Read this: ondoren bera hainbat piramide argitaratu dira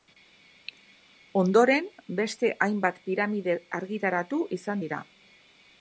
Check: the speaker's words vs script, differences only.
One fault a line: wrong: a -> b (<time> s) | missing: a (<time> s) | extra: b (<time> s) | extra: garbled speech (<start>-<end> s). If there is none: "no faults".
wrong: bera -> beste (2.2 s)
extra: izan (4.6 s)